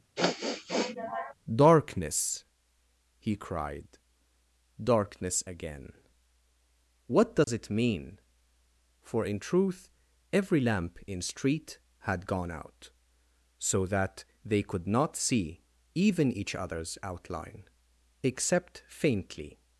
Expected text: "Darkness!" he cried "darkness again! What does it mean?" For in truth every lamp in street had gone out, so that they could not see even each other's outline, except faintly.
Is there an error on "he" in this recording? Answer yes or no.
no